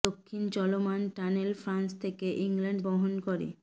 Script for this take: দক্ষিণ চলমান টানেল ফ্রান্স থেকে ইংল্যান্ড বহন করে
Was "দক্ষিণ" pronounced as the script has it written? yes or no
yes